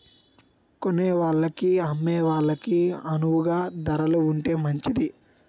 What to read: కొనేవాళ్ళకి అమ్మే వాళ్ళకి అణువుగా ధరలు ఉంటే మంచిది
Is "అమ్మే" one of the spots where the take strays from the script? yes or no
no